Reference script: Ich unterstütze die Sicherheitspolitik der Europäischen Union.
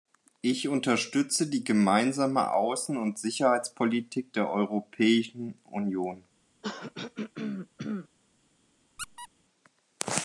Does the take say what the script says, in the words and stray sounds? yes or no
no